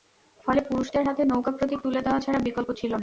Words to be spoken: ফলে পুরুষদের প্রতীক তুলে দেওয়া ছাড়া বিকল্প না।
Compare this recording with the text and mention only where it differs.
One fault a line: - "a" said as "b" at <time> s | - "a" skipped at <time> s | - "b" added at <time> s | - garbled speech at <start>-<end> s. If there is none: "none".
- "হাতে নৌকা" added at 1.1 s
- "ছিল" added at 2.7 s